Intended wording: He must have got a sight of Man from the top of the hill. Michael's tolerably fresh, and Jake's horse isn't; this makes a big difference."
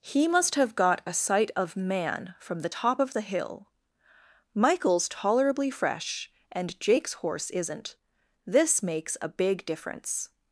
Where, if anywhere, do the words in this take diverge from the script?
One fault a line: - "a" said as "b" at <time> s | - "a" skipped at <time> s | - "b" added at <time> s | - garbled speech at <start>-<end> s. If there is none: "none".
none